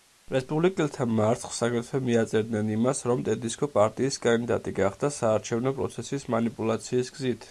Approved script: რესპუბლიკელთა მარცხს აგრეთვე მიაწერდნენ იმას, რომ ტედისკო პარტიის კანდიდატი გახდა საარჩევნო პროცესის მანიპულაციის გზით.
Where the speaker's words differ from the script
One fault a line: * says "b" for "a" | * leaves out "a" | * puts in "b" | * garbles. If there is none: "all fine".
all fine